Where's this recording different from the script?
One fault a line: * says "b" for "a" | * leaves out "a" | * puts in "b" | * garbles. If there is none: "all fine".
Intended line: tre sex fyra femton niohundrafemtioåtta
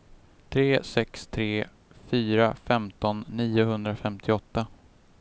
* puts in "tre"